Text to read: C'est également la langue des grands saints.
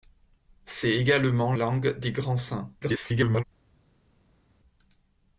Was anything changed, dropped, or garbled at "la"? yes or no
yes